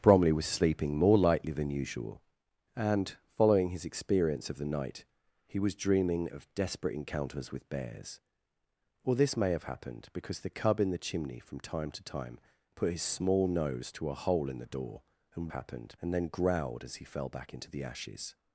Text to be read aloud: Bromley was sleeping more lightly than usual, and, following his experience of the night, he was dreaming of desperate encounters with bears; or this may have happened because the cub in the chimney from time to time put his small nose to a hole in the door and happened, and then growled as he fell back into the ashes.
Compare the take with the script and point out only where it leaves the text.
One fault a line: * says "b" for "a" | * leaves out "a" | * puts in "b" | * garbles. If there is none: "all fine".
all fine